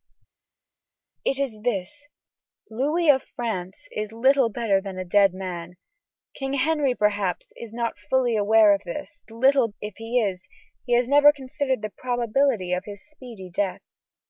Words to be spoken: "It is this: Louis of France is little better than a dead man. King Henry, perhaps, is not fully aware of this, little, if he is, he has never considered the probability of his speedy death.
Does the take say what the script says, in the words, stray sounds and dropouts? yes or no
yes